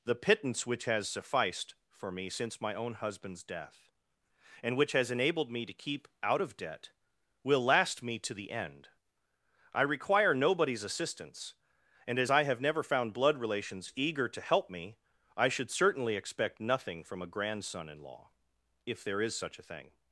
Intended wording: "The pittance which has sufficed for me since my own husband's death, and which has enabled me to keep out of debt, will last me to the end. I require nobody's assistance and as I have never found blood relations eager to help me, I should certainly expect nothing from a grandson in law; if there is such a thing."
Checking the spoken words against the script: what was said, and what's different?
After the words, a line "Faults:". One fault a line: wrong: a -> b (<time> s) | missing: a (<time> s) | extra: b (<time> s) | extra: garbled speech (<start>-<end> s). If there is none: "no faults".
"The pittance which has sufficed for me since my own husband's death, and which has enabled me to keep out of debt, will last me to the end. I require nobody's assistance and as I have never found blood relations eager to help me, I should certainly expect nothing from a grandson in law; if there is such a thing."
Faults:
no faults